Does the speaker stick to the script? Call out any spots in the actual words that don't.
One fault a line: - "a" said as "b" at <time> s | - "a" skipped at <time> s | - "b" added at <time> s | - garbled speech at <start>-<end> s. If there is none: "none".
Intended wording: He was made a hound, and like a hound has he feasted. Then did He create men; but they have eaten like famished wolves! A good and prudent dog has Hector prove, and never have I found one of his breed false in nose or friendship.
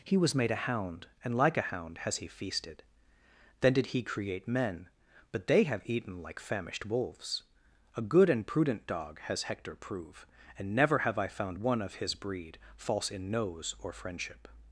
none